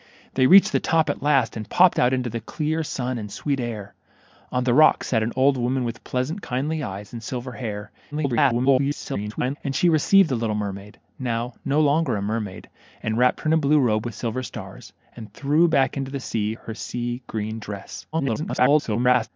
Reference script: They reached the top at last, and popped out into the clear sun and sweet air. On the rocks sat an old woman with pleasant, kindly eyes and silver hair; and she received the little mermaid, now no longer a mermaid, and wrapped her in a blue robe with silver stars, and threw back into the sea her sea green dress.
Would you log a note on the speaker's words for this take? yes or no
yes